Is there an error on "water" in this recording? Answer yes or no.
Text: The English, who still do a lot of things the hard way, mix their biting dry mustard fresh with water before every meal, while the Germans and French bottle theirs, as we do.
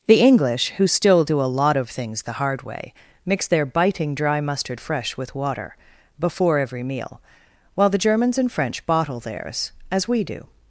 no